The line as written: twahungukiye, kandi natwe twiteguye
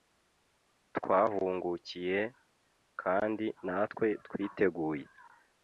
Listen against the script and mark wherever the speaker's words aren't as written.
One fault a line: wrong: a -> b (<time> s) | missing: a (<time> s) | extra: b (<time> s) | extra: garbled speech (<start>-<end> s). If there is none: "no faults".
no faults